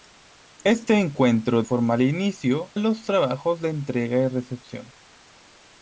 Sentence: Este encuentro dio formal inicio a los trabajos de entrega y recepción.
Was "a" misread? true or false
true